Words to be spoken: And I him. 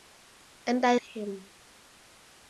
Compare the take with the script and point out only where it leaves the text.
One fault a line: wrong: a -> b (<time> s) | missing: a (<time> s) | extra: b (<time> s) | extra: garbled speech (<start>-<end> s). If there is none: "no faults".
no faults